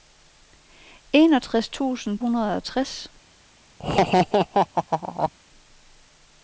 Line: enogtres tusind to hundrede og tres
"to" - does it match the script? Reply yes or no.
no